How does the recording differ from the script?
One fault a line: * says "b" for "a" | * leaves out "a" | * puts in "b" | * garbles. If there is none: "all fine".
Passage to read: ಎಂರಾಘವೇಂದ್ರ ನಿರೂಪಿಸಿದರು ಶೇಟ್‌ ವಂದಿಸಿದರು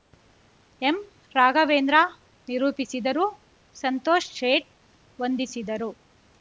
* puts in "ಸಂತೋಷ್"